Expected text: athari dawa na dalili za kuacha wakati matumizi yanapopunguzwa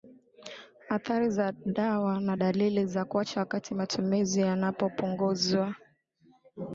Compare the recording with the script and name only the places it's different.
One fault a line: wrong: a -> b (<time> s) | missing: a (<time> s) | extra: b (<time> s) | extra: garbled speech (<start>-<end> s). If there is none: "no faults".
extra: za (1.3 s)